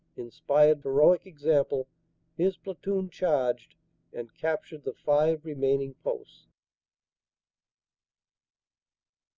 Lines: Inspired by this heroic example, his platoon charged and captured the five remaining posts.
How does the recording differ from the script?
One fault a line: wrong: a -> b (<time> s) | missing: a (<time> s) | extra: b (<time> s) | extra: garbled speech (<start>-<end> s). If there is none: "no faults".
missing: by this (0.8 s)